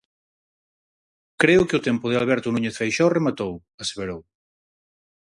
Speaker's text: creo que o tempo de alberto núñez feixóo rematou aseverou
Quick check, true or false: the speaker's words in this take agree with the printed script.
true